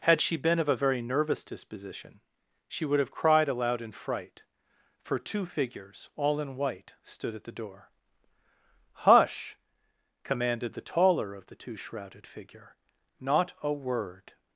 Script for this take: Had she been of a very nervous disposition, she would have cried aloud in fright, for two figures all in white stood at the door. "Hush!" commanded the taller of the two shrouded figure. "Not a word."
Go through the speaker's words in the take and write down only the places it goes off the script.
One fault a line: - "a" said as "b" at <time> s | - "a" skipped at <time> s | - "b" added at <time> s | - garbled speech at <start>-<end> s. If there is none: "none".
none